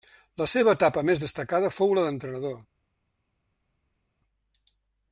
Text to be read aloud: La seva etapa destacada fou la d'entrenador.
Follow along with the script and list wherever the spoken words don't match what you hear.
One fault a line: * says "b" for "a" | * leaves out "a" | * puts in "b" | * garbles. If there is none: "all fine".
* puts in "més"